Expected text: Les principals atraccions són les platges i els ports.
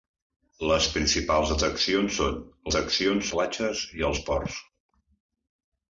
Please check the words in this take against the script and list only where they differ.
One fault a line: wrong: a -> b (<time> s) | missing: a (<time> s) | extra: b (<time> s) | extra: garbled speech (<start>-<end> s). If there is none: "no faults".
wrong: les -> atraccions (2.7 s)